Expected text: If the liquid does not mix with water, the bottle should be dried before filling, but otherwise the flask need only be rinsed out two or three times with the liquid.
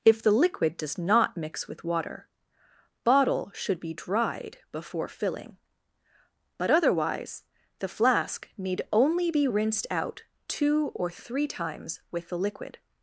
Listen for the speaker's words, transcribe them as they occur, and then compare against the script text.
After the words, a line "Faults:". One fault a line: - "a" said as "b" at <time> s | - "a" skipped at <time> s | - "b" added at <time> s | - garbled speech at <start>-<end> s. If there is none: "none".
If the liquid does not mix with water, bottle should be dried before filling, but otherwise the flask need only be rinsed out two or three times with the liquid.
Faults:
- "the" skipped at 2.3 s